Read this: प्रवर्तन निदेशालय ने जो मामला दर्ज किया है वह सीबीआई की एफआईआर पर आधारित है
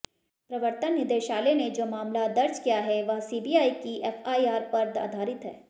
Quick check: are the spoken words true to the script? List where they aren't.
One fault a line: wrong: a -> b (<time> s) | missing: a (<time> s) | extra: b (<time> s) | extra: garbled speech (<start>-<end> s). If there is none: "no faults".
no faults